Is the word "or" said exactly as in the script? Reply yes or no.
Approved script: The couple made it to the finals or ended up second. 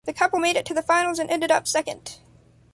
no